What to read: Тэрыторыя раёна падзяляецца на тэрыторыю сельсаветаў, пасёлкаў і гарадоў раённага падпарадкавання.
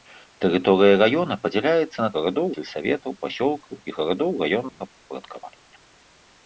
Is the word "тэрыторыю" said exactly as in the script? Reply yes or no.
no